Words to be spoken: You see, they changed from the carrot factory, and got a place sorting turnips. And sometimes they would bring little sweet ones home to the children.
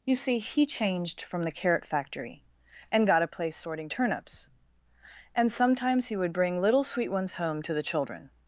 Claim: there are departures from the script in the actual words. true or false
true